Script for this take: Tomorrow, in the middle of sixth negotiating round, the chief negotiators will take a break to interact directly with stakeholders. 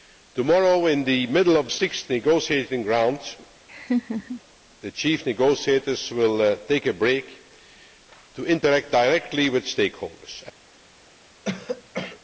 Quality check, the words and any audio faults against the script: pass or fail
fail